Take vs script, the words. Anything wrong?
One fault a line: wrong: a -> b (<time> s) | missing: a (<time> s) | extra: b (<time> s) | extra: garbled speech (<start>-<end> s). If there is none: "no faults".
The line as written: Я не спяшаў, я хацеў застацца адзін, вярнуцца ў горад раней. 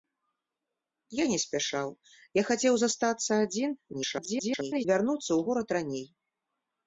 extra: garbled speech (3.9-4.9 s)